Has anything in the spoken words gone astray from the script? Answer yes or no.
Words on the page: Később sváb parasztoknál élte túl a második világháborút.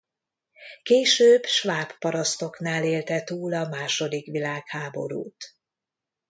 no